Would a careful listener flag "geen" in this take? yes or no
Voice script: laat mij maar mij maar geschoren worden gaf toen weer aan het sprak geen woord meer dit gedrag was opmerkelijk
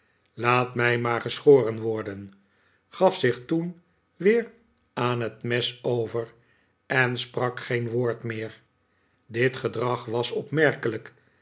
no